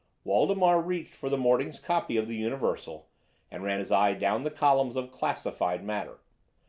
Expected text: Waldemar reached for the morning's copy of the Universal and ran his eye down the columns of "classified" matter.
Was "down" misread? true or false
false